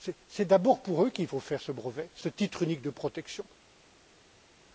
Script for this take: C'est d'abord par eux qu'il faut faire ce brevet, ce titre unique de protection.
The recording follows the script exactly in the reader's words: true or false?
false